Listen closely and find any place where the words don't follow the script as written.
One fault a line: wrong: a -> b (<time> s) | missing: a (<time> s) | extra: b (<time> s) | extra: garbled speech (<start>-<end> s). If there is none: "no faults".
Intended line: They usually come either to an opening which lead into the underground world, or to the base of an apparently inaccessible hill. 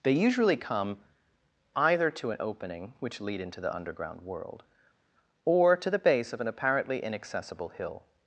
no faults